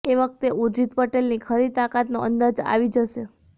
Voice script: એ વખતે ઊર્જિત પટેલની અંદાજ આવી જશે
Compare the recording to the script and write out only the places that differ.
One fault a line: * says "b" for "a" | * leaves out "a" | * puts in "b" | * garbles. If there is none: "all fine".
* puts in "ખરી તાકાતનો"